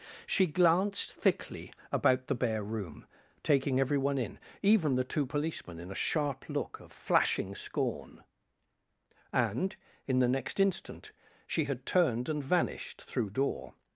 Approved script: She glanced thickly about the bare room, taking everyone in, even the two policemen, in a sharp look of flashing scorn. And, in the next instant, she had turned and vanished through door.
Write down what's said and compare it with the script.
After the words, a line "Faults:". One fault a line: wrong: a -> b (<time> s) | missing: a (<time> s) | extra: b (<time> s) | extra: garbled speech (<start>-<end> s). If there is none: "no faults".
She glanced thickly about the bare room, taking everyone in, even the two policemen, in a sharp look of flashing scorn. And, in the next instant, she had turned and vanished through door.
Faults:
no faults